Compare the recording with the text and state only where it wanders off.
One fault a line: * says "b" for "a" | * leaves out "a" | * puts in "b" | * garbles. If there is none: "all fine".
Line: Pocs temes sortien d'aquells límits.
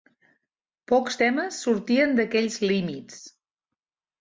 all fine